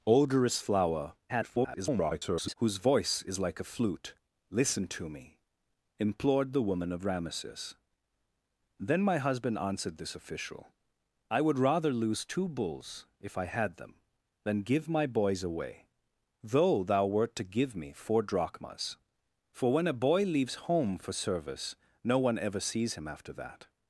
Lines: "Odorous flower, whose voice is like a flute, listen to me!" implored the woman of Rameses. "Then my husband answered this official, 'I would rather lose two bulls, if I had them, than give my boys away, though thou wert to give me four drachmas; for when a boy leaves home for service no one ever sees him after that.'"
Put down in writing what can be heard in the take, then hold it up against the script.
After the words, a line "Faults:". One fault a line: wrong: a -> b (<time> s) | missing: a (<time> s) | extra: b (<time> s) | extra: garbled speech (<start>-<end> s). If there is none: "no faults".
"Odorous flower, [garbled] whose voice is like a flute, listen to me!" implored the woman of Rameses. "Then my husband answered this official, 'I would rather lose two bulls, if I had them, than give my boys away, though thou wert to give me four drachmas; for when a boy leaves home for service no one ever sees him after that.'"
Faults:
extra: garbled speech (1.3-2.5 s)